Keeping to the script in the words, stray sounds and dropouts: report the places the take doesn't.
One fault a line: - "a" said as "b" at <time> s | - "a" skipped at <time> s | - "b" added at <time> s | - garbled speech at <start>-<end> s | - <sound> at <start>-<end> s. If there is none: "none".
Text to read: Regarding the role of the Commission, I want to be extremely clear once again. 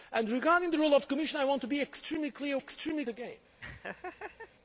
- "once" said as "extremely" at 2.6 s
- laugh at 3.6-4.5 s